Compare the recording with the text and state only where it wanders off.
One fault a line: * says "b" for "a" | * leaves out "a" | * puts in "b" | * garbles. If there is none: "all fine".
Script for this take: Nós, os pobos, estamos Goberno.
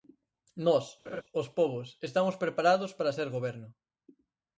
* puts in "preparados para ser"